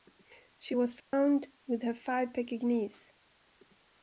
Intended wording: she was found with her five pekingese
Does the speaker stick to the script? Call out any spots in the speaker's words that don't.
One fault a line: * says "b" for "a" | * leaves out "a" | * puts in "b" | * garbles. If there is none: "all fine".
all fine